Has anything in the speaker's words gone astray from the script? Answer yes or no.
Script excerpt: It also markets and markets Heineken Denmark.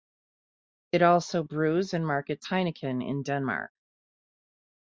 yes